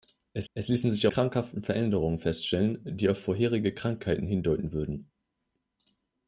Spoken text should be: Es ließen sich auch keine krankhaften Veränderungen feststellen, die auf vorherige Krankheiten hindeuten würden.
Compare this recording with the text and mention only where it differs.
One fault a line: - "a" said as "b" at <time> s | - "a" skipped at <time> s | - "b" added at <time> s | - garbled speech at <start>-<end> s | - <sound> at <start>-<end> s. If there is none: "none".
- "es" added at 0.5 s
- "auch keine" skipped at 1.1 s